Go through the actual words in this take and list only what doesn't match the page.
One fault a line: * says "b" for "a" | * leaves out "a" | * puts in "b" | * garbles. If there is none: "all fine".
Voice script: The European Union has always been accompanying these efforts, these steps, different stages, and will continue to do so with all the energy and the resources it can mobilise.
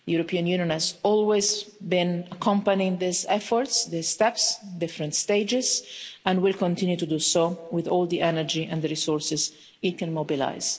all fine